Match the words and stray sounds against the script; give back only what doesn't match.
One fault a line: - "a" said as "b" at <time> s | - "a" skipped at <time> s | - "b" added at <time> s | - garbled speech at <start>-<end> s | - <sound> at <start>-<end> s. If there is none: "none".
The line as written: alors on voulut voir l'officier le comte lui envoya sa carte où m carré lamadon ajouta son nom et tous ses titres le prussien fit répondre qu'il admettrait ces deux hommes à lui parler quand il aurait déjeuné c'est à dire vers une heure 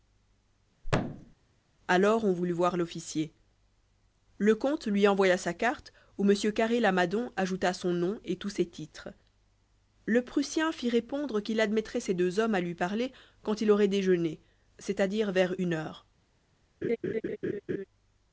- thud at 0.8-1.3 s
- laugh at 16.8-17.8 s